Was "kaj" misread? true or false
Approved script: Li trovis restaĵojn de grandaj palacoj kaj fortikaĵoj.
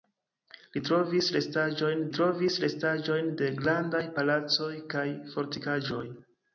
false